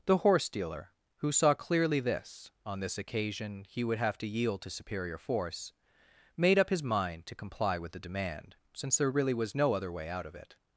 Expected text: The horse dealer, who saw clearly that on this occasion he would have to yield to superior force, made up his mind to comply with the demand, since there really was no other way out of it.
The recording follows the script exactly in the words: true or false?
false